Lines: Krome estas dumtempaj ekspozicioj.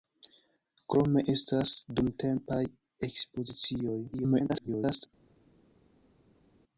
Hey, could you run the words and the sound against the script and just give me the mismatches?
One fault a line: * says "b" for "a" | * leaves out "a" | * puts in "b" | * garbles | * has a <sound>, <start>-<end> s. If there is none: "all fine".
* garbles